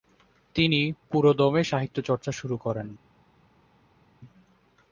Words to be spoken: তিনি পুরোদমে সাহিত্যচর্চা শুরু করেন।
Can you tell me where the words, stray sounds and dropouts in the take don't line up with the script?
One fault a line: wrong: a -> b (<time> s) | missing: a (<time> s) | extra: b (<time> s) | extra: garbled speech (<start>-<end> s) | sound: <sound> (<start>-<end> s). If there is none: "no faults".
no faults